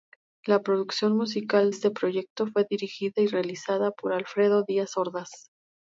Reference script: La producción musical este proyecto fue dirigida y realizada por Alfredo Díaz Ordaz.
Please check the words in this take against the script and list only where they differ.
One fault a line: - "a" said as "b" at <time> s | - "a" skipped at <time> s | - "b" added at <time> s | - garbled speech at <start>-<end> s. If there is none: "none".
none